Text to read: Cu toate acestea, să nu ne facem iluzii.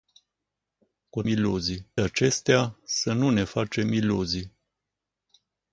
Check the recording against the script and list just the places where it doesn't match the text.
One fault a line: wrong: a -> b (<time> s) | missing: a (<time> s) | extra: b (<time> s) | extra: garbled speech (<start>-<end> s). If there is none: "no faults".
wrong: toate -> iluzii (1.3 s)